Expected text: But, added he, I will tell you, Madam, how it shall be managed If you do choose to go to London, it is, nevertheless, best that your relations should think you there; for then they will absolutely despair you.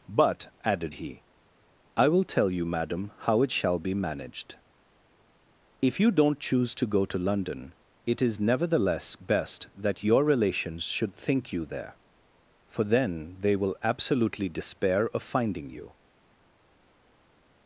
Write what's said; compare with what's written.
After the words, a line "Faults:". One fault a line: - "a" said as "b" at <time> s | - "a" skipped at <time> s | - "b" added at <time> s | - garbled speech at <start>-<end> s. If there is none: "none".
But, added he, I will tell you, Madam, how it shall be managed If you don't choose to go to London, it is, nevertheless, best that your relations should think you there; for then they will absolutely despair of finding you.
Faults:
- "do" said as "don't" at 6.1 s
- "of finding" added at 15.1 s